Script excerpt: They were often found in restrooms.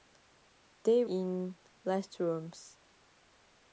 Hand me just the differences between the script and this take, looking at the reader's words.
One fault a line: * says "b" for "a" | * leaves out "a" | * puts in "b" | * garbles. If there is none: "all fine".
* leaves out "were often found"